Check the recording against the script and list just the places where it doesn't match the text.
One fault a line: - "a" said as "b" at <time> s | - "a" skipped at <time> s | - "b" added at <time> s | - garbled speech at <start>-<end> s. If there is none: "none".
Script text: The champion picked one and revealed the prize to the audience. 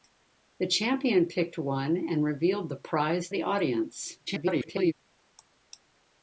- "to" skipped at 3.3 s
- garbled speech at 4.3-4.9 s